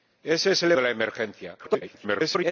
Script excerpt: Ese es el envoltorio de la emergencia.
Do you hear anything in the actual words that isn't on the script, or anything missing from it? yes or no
yes